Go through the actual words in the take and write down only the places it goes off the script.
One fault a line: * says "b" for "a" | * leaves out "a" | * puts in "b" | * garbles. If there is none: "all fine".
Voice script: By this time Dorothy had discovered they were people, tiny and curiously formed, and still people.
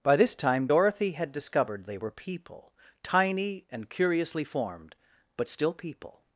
* says "but" for "and"